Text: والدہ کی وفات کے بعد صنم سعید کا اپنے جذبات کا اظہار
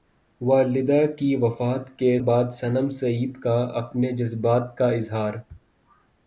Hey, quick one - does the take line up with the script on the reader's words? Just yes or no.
yes